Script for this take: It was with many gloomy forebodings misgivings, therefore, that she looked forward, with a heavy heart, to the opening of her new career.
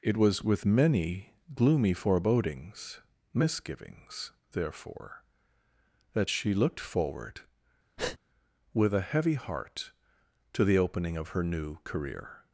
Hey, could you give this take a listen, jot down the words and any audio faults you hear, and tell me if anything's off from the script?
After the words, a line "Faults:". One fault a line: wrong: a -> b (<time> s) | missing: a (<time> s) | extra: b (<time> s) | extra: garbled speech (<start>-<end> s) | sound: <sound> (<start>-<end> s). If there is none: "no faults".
It was with many gloomy forebodings misgivings, therefore, that she looked forward, with a heavy heart, to the opening of her new career.
Faults:
sound: breath (8.0-8.2 s)